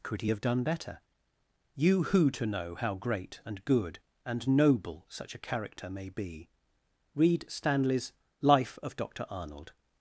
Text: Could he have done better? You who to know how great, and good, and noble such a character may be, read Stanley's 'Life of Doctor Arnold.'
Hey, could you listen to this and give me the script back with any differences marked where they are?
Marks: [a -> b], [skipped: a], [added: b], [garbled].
Could he have done better? You who to know how great, and good, and noble such a character may be, read Stanley's 'Life of Doctor Arnold.'